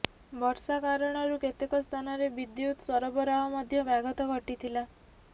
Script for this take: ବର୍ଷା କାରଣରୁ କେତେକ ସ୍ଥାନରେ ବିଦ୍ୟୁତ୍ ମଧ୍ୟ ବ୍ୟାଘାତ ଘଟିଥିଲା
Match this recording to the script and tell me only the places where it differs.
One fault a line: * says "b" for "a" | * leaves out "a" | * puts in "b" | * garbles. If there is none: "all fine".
* puts in "ସରବରାହ"